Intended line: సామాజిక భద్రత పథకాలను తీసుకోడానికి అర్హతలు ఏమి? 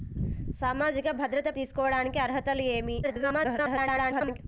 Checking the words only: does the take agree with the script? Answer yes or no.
no